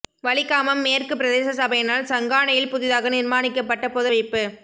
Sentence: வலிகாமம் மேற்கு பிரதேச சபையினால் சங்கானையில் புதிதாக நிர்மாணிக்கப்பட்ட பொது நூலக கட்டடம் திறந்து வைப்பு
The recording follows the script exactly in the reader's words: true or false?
false